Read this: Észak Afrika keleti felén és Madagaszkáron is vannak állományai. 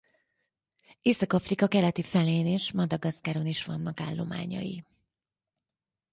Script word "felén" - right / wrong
right